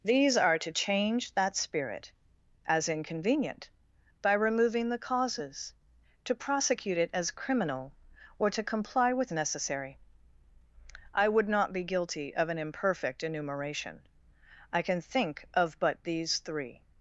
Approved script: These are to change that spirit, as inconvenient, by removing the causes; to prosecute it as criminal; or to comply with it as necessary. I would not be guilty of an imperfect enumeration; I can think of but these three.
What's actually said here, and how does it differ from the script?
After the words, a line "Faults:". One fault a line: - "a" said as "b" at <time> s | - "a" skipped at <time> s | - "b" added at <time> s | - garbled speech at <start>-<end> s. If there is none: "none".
These are to change that spirit, as inconvenient, by removing the causes; to prosecute it as criminal; or to comply with necessary. I would not be guilty of an imperfect enumeration; I can think of but these three.
Faults:
- "it as" skipped at 9.3 s